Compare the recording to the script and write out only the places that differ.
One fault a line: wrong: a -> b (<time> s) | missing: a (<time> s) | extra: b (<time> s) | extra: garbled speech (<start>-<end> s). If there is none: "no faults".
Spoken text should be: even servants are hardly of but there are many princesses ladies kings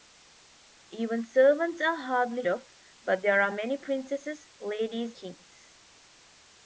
no faults